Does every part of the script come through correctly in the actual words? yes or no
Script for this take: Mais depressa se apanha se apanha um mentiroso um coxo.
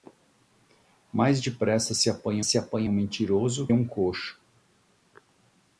yes